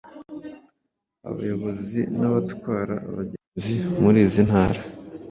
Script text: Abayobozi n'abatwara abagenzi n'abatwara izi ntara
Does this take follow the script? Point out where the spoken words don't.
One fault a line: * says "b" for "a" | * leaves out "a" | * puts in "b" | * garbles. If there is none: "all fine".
* says "muri" for "n'abatwara"